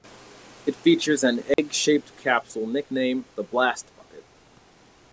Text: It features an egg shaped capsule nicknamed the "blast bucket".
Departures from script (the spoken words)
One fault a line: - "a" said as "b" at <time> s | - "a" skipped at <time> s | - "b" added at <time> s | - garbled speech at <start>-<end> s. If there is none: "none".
none